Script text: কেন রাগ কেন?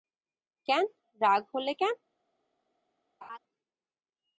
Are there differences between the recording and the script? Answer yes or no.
yes